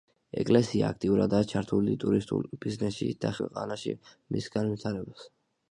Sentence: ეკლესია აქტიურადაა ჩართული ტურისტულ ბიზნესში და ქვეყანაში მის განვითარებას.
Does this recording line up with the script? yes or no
yes